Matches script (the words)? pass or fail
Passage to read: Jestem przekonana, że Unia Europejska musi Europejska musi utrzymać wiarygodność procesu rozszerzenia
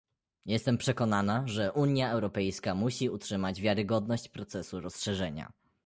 fail